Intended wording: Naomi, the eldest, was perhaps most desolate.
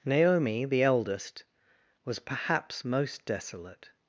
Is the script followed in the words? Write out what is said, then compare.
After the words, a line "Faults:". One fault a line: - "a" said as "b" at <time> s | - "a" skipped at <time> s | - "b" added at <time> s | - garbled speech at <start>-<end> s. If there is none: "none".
Naomi, the eldest, was perhaps most desolate.
Faults:
none